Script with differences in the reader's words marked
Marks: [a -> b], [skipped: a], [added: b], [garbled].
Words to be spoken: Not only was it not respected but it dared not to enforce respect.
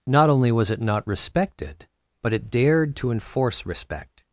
Not only was it not respected but it dared [skipped: not] to enforce respect.